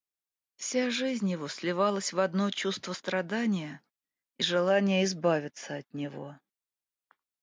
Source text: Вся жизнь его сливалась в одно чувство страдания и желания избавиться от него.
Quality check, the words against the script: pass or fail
pass